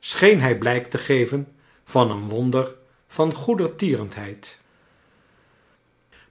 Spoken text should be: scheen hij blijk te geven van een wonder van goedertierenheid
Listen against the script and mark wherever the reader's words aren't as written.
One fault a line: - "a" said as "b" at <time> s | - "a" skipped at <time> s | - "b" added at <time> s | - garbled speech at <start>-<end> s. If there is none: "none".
none